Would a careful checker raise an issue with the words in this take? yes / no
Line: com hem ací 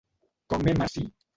no